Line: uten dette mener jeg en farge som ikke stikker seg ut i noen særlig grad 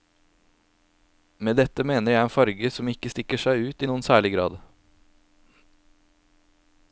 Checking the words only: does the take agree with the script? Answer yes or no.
no